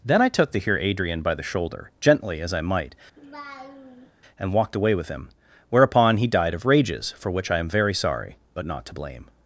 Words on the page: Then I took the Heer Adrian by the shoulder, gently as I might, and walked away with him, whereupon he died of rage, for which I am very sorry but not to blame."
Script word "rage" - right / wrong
wrong